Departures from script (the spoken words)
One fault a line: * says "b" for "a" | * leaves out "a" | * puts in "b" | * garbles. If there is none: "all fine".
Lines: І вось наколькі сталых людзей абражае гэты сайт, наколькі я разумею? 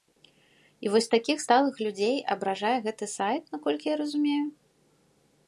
* says "такіх" for "наколькі"